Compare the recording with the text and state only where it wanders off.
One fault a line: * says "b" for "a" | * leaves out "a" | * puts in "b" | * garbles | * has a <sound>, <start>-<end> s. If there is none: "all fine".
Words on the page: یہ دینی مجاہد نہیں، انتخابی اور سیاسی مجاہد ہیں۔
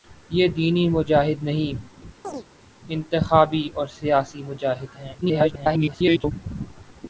* has a chirp, 2.2-2.5 s
* garbles